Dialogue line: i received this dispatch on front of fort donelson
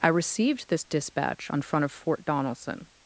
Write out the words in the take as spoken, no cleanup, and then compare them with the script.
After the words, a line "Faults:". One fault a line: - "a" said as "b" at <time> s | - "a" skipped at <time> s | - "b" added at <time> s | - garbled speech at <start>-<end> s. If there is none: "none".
i received this dispatch on front of fort donelson
Faults:
none